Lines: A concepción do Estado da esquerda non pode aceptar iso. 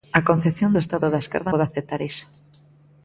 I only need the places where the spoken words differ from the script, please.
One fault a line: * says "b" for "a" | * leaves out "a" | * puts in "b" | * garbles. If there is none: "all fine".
* leaves out "non"